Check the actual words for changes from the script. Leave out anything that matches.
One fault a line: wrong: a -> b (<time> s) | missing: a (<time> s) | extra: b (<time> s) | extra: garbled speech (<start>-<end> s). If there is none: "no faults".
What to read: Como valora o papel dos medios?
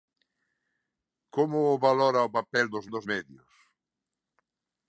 extra: dos (2.9 s)